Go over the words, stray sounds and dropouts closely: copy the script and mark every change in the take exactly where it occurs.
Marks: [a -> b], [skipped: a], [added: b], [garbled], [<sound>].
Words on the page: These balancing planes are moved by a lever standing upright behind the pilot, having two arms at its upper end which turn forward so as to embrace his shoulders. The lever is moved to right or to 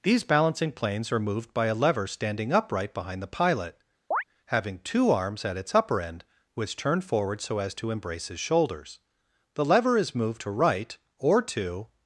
These balancing planes are moved by a lever standing upright behind the pilot, [chirp] having two arms at its upper end which turn forward so as to embrace his shoulders. The lever is moved to right or to